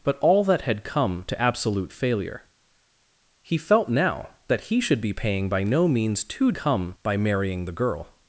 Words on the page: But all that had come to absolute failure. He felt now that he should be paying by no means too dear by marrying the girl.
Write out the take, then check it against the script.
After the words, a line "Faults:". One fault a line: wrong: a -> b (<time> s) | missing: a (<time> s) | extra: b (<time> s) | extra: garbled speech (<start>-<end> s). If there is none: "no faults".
But all that had come to absolute failure. He felt now that he should be paying by no means too come by marrying the girl.
Faults:
wrong: dear -> come (6.5 s)